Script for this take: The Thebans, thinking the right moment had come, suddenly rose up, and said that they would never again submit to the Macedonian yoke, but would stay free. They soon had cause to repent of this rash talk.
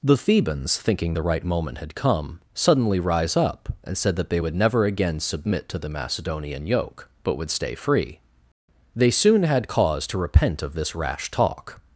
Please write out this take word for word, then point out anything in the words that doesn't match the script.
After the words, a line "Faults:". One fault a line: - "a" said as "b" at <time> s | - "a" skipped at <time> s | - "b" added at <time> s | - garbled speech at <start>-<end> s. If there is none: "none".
The Thebans, thinking the right moment had come, suddenly rise up, and said that they would never again submit to the Macedonian yoke, but would stay free. They soon had cause to repent of this rash talk.
Faults:
- "rose" said as "rise" at 3.0 s